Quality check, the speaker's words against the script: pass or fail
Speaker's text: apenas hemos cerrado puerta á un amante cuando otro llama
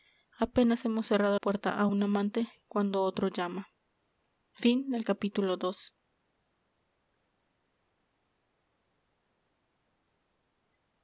pass